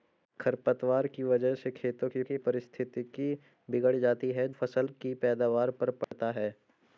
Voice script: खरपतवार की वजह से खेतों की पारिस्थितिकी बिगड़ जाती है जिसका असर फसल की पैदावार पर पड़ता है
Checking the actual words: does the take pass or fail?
fail